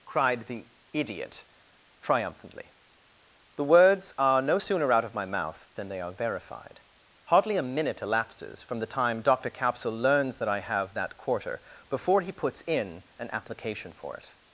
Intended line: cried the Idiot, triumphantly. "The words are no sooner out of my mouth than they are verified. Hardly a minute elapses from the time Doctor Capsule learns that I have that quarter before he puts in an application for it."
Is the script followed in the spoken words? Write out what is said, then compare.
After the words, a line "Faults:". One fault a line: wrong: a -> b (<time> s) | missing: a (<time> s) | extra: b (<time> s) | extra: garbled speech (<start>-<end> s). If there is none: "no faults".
cried the Idiot, triumphantly. "The words are no sooner out of my mouth than they are verified. Hardly a minute elapses from the time Doctor Capsule learns that I have that quarter before he puts in an application for it."
Faults:
no faults